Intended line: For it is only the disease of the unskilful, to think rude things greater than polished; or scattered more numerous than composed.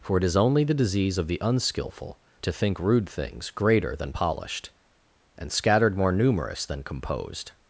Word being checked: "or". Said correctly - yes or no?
no